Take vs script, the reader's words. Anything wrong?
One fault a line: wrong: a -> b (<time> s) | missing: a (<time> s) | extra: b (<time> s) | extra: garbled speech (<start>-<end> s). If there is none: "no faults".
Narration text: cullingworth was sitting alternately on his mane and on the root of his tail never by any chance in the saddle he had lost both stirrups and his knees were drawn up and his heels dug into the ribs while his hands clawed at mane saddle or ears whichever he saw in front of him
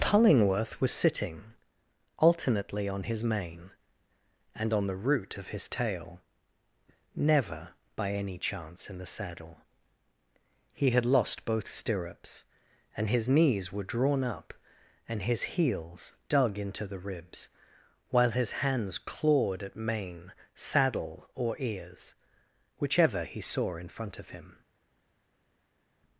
no faults